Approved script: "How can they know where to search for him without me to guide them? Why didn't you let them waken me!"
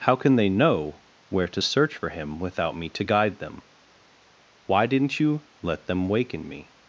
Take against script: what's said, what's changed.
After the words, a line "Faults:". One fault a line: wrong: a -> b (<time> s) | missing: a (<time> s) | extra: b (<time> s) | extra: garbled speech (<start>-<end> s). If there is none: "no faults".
"How can they know where to search for him without me to guide them? Why didn't you let them waken me!"
Faults:
no faults